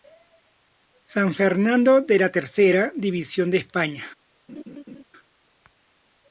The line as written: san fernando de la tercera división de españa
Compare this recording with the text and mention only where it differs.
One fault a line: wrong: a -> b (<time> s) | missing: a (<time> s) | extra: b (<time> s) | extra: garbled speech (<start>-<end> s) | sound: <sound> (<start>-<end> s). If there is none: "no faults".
sound: laugh (4.5-5.0 s)